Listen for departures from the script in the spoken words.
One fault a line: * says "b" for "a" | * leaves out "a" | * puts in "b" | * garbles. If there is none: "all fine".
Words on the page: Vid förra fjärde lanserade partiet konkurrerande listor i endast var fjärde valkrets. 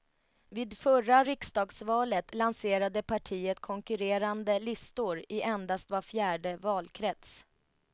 * says "riksdagsvalet" for "fjärde"